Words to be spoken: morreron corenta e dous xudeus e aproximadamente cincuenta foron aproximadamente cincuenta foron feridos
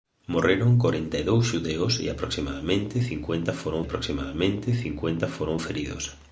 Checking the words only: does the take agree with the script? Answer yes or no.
yes